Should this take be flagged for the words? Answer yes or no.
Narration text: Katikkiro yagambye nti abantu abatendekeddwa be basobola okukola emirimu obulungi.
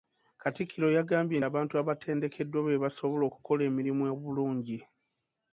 yes